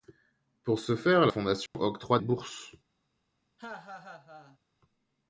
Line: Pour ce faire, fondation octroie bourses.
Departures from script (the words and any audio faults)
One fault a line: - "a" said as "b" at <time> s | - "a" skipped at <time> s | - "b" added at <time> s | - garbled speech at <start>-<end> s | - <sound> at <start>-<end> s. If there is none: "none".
- dropout at 1.7-1.7 s
- laugh at 3.6-4.6 s